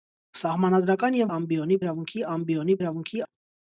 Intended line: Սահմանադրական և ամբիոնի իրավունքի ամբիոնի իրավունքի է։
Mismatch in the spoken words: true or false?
false